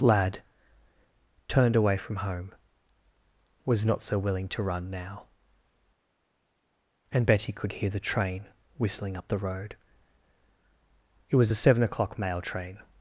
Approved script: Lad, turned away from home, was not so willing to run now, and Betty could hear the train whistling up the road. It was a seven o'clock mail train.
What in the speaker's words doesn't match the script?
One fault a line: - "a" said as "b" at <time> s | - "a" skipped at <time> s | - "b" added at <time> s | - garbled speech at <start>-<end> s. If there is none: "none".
none